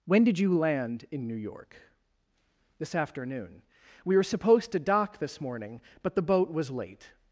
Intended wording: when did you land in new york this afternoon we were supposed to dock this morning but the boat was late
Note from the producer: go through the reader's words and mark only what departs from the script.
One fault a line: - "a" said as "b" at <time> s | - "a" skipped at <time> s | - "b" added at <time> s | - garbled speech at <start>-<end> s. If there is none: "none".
none